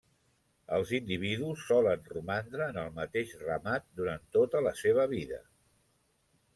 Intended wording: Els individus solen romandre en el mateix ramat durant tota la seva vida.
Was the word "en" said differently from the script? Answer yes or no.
no